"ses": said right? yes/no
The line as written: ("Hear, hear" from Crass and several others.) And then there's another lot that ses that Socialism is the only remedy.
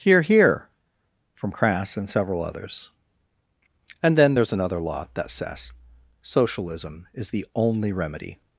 no